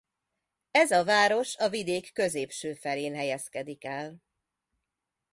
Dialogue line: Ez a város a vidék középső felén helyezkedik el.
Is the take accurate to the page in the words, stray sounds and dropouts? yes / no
yes